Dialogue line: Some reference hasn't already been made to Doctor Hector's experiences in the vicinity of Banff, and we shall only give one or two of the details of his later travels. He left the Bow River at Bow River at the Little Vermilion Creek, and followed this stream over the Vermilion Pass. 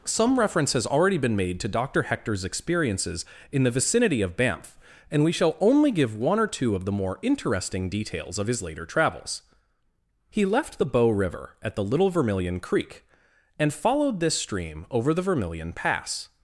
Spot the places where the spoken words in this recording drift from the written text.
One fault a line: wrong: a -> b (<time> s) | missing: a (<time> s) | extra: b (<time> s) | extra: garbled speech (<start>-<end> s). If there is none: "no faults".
wrong: hasn't -> has (0.7 s)
extra: more interesting (6.9 s)
missing: Bow River at (11.8 s)